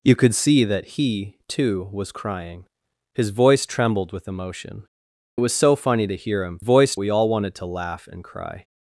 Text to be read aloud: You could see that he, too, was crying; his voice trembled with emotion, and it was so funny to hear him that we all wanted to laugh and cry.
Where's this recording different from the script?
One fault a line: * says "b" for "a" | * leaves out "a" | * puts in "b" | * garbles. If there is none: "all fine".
* leaves out "and"
* says "voice" for "that"